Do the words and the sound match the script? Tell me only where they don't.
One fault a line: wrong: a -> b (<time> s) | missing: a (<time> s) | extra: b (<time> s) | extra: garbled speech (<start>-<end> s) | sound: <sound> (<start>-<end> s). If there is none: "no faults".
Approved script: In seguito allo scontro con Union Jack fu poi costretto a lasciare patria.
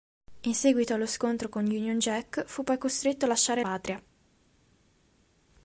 no faults